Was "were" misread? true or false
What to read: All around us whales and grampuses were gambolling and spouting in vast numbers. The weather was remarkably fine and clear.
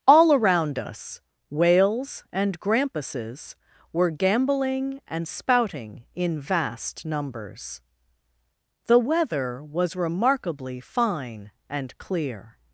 false